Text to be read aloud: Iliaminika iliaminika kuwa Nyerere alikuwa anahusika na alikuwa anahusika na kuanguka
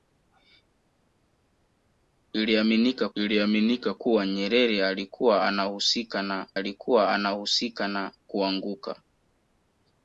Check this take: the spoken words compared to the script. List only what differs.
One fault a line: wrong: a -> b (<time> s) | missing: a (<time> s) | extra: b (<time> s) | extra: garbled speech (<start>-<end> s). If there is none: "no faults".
no faults